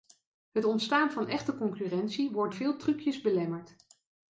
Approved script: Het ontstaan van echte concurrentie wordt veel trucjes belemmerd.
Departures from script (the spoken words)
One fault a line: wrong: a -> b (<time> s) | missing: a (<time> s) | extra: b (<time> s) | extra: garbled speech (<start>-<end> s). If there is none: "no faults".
no faults